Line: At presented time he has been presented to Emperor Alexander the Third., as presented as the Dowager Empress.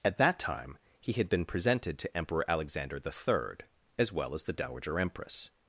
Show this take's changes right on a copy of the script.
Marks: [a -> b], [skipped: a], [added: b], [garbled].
At [presented -> that] time he [has -> had] been presented to Emperor Alexander the Third., as [presented -> well] as the Dowager Empress.